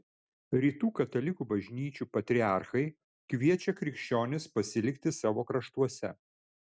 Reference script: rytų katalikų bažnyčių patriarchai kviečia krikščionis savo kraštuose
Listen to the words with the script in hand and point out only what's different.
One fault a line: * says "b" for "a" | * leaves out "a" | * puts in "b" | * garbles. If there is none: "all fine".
* puts in "pasilikti"